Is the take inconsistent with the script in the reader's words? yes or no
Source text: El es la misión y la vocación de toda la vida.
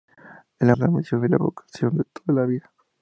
no